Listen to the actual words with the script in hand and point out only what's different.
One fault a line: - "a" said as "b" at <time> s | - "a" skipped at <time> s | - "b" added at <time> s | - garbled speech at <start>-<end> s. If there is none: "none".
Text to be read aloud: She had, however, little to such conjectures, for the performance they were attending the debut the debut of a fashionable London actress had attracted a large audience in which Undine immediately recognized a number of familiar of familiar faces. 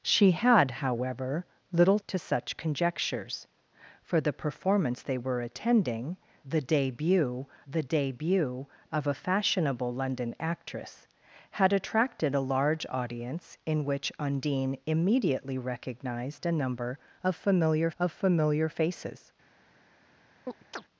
none